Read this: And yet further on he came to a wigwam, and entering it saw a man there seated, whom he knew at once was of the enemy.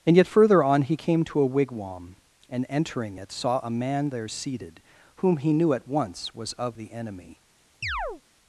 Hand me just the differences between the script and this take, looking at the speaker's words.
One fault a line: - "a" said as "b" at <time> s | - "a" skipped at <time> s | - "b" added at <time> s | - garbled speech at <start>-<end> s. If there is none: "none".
none